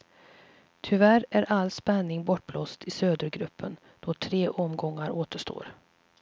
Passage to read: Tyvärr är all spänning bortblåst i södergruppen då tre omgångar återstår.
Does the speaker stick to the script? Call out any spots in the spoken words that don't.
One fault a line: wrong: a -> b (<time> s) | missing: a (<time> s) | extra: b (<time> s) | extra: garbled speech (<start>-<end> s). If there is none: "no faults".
no faults